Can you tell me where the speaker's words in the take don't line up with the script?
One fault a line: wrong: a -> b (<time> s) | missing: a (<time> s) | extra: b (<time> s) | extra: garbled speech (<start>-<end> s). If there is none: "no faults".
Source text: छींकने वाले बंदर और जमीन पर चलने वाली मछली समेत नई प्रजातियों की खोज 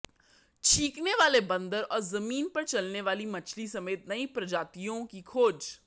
no faults